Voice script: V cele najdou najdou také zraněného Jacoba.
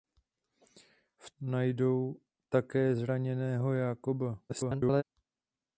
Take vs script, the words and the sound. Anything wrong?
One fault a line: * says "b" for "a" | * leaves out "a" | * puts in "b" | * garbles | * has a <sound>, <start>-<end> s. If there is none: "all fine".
* leaves out "cele najdou"
* garbles